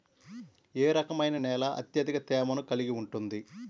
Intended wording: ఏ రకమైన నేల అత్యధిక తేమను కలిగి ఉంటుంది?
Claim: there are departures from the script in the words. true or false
false